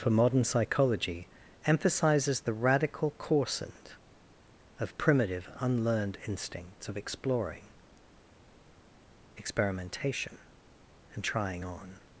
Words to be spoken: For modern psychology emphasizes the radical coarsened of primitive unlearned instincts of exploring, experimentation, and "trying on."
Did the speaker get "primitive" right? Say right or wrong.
right